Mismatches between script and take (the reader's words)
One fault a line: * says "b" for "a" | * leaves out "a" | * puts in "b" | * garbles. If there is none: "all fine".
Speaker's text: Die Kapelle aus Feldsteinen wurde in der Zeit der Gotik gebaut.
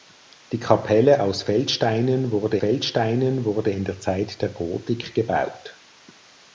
* puts in "Feldsteinen wurde"